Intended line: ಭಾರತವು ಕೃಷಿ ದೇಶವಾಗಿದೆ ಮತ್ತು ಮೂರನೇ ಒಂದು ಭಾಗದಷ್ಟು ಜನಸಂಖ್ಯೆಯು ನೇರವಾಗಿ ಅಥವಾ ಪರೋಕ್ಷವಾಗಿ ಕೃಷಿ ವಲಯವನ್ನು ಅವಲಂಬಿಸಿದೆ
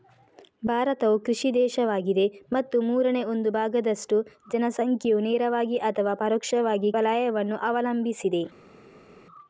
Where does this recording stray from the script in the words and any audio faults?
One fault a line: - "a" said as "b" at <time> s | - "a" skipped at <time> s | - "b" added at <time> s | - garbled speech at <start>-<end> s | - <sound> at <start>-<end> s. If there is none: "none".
- "ಕೃಷಿ" skipped at 6.9 s